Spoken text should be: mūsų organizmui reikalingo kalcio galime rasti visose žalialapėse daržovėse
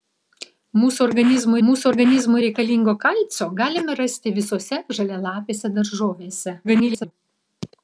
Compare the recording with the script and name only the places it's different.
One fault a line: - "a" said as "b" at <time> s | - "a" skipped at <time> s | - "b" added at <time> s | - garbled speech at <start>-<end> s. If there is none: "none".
- "mūsų organizmui" added at 1.7 s
- garbled speech at 6.6-7.1 s